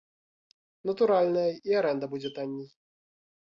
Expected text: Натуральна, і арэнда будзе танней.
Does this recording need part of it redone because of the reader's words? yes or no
no